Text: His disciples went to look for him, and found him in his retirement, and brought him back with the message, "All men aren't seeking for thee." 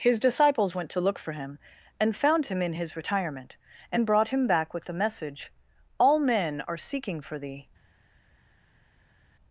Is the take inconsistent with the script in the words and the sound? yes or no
yes